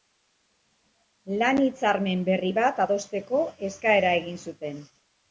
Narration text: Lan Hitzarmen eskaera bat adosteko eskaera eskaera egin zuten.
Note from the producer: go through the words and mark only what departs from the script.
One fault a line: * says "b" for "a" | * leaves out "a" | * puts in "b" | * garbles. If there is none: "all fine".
* says "berri" for "eskaera"
* leaves out "eskaera"